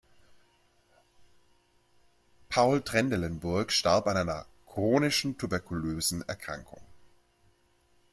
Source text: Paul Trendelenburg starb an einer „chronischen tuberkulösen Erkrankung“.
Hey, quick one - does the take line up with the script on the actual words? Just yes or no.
yes